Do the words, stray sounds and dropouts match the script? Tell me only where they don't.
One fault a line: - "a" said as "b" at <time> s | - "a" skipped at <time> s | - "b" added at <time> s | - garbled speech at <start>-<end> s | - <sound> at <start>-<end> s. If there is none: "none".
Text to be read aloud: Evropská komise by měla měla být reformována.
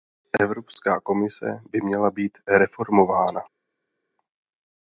- "měla" skipped at 2.1 s